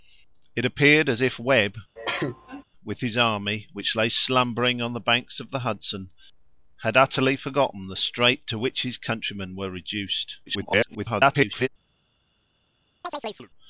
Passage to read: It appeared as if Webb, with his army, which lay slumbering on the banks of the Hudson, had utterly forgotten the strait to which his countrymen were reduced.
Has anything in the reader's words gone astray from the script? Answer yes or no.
yes